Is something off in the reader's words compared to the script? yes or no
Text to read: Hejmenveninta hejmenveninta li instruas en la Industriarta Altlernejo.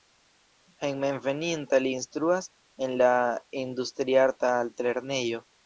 yes